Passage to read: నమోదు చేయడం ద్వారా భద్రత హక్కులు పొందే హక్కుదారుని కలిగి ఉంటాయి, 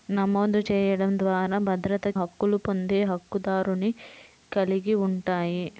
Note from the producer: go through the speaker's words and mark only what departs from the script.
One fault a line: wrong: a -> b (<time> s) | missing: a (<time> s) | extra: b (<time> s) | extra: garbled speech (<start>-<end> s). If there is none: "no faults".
no faults